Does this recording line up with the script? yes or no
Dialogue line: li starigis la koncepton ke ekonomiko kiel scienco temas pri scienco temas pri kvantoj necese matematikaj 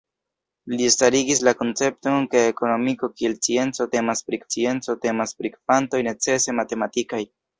yes